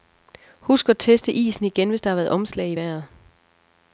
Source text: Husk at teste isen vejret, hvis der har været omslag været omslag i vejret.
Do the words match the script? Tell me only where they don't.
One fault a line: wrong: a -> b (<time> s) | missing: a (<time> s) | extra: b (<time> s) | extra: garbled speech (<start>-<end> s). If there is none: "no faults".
wrong: vejret -> igen (1.6 s)
missing: været omslag (2.7 s)